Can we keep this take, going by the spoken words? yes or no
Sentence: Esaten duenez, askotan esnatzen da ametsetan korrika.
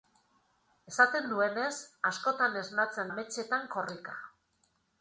no